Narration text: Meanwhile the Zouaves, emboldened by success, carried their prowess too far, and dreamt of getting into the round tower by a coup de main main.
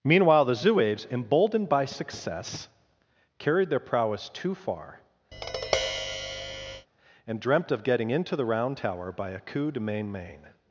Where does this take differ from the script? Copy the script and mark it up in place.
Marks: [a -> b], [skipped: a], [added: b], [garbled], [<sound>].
Meanwhile the Zouaves, emboldened by success, carried their prowess too far, [tap] and dreamt of getting into the round tower by a coup de main main.